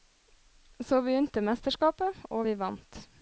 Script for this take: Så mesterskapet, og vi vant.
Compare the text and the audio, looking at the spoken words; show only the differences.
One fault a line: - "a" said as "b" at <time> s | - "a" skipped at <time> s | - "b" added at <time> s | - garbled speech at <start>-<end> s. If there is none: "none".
- "begynte" added at 1.1 s